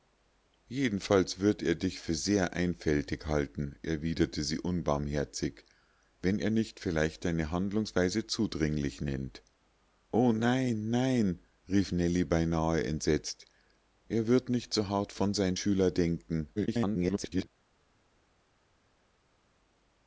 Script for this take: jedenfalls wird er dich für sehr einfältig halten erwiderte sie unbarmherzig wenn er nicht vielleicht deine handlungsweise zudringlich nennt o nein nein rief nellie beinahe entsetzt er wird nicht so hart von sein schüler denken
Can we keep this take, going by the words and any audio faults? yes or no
no